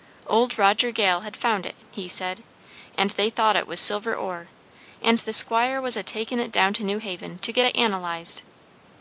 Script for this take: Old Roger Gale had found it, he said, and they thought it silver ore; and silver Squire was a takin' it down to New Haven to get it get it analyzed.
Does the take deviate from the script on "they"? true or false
false